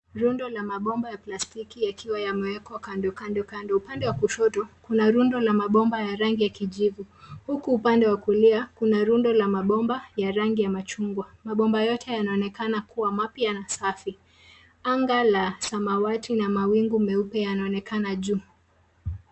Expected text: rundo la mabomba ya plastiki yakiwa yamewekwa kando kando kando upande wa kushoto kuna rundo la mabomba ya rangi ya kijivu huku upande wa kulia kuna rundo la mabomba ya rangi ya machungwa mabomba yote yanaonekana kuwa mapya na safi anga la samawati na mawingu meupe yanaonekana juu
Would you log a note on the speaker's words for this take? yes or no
no